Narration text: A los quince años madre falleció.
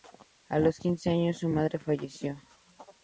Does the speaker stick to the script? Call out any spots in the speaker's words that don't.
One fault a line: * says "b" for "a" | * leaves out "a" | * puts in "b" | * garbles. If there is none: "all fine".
* puts in "su"